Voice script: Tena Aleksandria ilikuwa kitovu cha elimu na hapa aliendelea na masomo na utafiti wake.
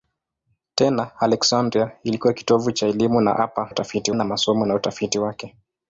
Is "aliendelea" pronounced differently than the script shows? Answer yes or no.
yes